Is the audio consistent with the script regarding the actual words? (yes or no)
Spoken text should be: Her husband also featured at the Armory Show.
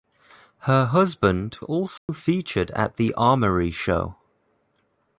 yes